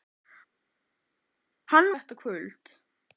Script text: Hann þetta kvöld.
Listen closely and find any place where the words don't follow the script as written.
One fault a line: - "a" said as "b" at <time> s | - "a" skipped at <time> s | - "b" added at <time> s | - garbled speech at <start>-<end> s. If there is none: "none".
none